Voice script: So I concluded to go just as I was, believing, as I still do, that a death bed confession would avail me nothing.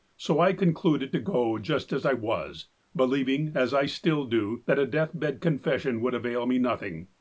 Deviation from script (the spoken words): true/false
false